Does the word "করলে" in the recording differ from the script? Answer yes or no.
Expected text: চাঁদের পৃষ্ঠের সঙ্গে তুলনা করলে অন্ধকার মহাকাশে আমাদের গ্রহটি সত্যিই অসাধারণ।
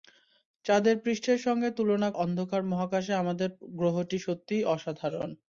yes